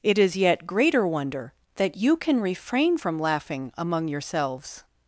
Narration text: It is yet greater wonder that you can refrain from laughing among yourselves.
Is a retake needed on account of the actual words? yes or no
no